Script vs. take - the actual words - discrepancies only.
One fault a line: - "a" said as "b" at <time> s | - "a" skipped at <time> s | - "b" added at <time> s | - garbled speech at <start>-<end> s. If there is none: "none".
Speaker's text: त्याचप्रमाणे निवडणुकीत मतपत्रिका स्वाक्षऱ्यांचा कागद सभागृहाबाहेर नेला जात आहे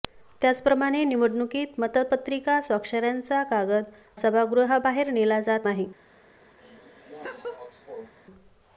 none